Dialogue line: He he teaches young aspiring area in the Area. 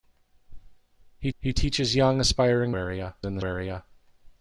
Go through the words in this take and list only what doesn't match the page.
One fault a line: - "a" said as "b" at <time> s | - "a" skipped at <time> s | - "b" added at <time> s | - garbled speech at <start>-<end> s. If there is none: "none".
none